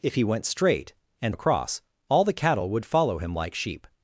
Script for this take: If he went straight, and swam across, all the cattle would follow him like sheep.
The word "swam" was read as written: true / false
false